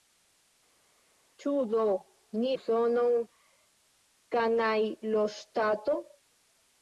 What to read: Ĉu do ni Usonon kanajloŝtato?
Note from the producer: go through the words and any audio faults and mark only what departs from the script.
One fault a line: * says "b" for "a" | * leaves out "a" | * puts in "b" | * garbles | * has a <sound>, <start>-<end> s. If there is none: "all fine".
all fine